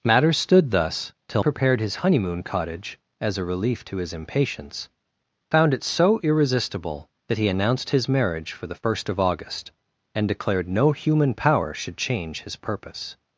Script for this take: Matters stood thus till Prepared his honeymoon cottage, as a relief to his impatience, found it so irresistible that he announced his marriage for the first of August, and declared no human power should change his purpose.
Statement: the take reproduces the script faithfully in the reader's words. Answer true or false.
true